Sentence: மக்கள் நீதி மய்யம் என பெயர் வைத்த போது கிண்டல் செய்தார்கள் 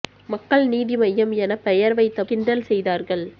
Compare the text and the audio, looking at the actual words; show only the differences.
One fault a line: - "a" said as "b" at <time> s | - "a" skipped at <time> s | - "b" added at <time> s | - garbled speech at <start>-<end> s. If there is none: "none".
- "போது" skipped at 2.2 s